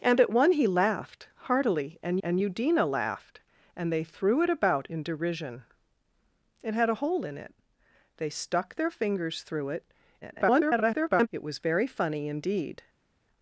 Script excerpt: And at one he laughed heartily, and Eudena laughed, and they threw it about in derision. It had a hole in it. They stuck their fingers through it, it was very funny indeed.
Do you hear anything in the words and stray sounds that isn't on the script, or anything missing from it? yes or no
yes